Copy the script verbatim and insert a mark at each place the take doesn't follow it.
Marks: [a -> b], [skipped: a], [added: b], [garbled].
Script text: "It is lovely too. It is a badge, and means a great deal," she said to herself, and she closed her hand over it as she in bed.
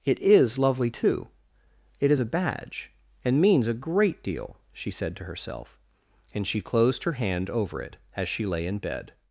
"It is lovely too. It is a badge, and means a great deal," she said to herself, and she closed her hand over it as she [added: lay] in bed.